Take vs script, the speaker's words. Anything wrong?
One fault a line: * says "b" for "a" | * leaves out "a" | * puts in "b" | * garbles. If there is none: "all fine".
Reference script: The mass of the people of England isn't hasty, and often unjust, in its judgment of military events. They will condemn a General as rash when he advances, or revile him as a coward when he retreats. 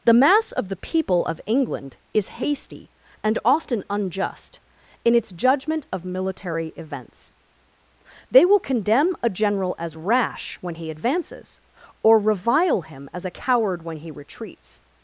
* says "is" for "isn't"